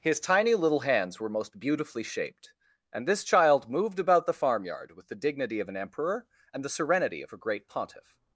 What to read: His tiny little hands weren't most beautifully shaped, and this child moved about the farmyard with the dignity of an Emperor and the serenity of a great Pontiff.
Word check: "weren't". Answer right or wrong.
wrong